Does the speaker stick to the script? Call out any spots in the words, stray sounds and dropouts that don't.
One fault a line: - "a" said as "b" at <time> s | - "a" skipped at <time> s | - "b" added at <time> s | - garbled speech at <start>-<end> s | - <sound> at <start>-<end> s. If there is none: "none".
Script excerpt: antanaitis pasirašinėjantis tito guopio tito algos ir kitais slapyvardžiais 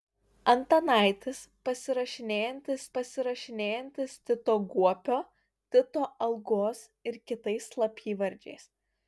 - "pasirašinėjantis" added at 3.0 s